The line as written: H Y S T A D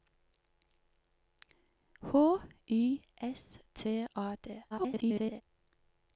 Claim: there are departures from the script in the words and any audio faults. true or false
true